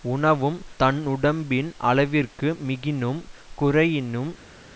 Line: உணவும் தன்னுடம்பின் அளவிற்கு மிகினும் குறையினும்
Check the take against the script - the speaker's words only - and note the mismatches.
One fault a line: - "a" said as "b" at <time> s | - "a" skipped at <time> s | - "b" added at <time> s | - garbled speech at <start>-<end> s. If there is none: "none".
none